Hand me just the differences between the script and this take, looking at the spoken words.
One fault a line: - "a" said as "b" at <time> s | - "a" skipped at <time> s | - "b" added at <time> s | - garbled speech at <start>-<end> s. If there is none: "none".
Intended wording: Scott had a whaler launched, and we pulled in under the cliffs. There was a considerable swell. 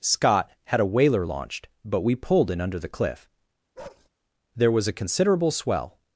- "and" said as "but" at 1.8 s
- "cliffs" said as "cliff" at 2.9 s